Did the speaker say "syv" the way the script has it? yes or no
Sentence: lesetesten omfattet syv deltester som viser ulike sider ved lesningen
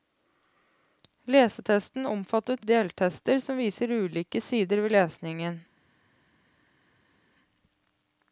no